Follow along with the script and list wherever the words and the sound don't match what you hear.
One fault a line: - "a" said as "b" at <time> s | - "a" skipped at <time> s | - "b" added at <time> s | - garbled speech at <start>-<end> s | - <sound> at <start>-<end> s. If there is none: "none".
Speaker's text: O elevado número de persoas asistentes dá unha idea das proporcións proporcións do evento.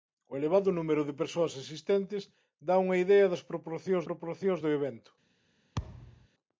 - thud at 5.8-6.3 s